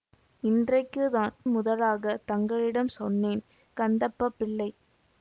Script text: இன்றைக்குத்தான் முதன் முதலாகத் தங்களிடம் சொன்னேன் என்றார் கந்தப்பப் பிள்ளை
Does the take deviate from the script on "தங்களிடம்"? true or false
false